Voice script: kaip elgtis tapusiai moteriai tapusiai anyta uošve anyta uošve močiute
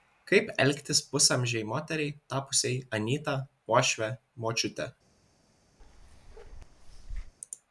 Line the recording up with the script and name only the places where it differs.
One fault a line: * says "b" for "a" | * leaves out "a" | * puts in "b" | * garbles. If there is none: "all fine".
* says "pusamžei" for "tapusiai"
* leaves out "anyta uošve"